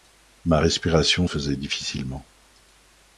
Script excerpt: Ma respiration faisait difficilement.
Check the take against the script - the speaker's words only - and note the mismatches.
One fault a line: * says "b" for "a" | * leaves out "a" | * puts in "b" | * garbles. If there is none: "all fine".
all fine